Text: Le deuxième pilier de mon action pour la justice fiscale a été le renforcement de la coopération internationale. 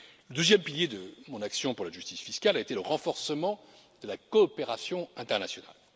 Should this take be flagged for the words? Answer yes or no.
no